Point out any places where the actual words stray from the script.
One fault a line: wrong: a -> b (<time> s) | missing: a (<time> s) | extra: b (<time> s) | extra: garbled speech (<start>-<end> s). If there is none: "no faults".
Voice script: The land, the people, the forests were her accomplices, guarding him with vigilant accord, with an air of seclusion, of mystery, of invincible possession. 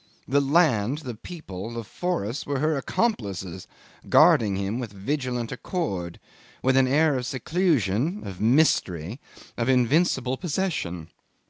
no faults